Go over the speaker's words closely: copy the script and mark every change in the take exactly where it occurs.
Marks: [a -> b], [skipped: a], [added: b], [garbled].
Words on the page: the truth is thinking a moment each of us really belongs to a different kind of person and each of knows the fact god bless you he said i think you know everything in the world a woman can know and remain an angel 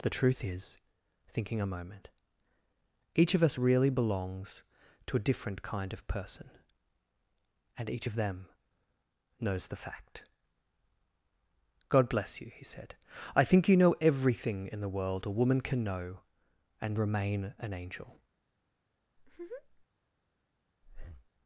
the truth is thinking a moment each of us really belongs to a different kind of person and each of [added: them] knows the fact god bless you he said i think you know everything in the world a woman can know and remain an angel